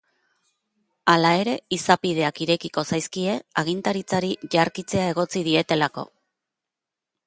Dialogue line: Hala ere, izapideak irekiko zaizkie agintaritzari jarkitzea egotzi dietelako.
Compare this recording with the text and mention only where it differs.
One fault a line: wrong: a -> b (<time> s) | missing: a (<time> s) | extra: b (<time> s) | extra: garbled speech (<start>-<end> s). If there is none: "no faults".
no faults